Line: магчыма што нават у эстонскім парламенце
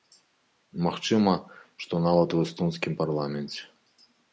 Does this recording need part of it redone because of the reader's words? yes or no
no